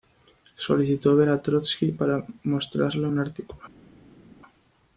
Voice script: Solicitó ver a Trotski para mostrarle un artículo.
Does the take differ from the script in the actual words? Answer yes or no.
no